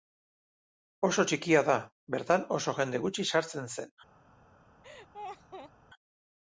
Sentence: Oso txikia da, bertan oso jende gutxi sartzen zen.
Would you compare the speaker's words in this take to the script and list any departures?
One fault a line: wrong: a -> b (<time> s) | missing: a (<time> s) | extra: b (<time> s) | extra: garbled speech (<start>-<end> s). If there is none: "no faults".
no faults